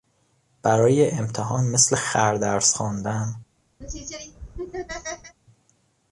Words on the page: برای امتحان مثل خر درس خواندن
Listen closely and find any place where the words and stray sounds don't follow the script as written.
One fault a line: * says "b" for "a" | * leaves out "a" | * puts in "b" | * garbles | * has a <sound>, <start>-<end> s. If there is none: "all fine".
* has a laugh, 3.8-5.4 s